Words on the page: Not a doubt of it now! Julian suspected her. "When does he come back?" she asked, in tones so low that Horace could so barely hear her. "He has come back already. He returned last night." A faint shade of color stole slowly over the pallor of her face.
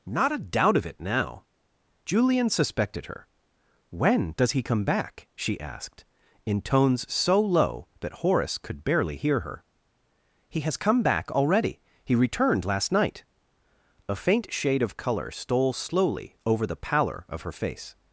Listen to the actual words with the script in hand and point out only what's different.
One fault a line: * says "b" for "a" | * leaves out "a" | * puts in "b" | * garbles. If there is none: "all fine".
* leaves out "so"